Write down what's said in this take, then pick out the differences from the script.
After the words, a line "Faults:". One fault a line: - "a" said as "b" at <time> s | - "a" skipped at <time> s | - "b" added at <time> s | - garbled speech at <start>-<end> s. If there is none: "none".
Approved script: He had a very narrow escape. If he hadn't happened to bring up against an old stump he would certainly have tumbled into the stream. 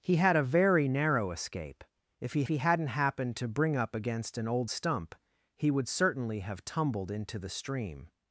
He had a very narrow escape. If he he hadn't happened to bring up against an old stump he would certainly have tumbled into the stream.
Faults:
- "he" added at 2.5 s